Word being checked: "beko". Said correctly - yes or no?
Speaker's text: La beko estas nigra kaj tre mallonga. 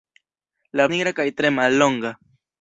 no